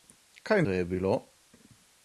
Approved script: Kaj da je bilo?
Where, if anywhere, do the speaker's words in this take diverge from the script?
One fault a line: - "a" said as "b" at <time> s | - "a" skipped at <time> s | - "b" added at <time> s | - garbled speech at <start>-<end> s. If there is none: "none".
none